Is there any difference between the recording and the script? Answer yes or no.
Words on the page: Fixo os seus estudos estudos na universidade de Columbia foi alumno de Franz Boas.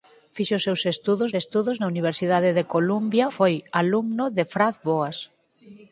no